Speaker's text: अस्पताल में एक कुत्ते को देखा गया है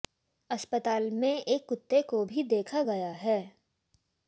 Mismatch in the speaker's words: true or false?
true